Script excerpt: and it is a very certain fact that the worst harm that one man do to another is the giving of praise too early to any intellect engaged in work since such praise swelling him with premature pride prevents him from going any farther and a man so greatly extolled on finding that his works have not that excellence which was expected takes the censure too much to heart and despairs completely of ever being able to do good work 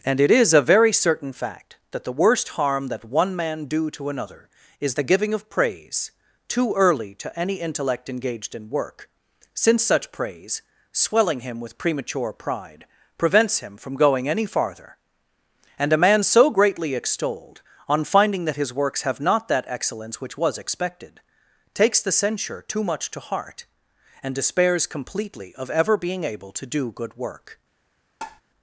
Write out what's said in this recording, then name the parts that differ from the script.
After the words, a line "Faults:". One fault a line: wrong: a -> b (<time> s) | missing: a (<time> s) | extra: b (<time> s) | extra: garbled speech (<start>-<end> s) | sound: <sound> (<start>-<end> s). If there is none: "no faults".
and it is a very certain fact that the worst harm that one man do to another is the giving of praise too early to any intellect engaged in work since such praise swelling him with premature pride prevents him from going any farther and a man so greatly extolled on finding that his works have not that excellence which was expected takes the censure too much to heart and despairs completely of ever being able to do good work
Faults:
sound: tap (28.2-28.4 s)